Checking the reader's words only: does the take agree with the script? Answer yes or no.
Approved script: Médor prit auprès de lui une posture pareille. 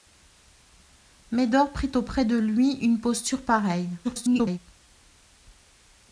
no